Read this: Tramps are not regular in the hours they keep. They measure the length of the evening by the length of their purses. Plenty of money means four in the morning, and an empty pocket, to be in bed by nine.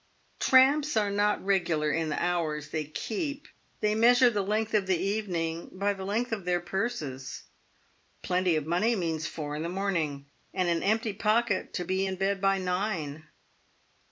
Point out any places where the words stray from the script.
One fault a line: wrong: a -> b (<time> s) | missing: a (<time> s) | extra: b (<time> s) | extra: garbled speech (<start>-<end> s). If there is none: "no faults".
no faults